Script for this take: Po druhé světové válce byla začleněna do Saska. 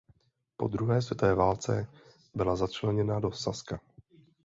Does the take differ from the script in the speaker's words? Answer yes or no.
no